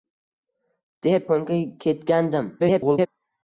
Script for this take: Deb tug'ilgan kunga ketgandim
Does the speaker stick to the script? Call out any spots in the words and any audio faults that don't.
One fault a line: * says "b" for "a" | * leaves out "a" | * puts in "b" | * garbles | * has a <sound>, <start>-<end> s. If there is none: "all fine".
* leaves out "tug'ilgan"
* garbles